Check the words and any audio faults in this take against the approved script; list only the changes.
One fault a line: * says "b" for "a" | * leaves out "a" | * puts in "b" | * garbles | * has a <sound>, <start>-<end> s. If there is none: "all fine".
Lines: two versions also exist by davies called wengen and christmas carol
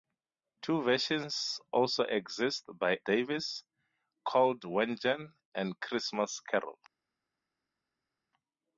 all fine